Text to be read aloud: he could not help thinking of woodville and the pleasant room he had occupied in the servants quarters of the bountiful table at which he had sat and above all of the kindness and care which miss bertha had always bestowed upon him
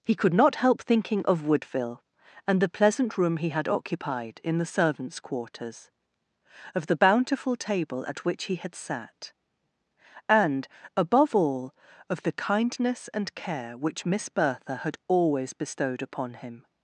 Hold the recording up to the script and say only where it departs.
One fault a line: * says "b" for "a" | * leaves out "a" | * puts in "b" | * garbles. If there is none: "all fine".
all fine